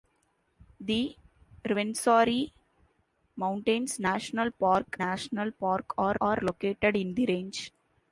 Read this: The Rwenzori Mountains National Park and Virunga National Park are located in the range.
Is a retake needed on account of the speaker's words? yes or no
yes